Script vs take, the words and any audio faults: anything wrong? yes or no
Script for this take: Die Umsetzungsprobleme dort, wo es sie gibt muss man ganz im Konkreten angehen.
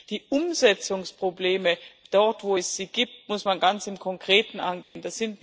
yes